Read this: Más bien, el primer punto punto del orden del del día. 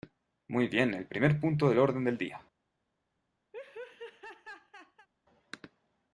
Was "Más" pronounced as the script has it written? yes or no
no